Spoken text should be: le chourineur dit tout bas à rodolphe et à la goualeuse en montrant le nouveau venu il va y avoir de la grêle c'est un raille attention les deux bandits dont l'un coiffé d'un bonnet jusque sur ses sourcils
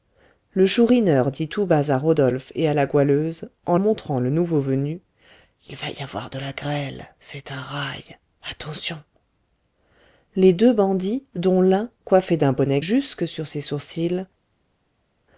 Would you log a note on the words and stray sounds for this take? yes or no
no